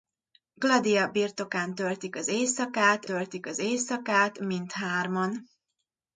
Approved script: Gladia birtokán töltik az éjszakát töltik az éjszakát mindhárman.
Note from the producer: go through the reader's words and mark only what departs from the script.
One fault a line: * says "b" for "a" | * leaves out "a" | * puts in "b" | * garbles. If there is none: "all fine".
all fine